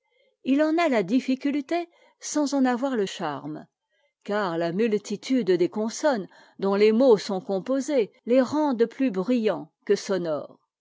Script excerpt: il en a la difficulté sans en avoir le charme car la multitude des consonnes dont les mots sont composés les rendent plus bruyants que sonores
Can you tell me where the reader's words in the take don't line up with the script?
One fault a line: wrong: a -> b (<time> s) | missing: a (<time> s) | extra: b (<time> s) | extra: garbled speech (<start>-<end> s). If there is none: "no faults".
no faults